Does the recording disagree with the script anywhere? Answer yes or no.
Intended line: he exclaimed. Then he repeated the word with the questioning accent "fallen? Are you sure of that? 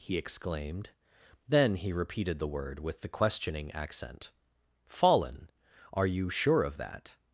no